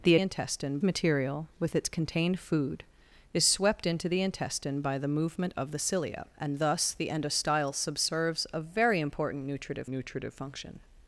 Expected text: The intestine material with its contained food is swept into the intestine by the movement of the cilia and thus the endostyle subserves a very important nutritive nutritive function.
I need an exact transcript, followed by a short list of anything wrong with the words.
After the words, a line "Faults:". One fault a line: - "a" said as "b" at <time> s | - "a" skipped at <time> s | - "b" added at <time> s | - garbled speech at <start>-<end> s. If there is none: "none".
The intestine material with its contained food is swept into the intestine by the movement of the cilia and thus the endostyle subserves a very important nutritive nutritive function.
Faults:
none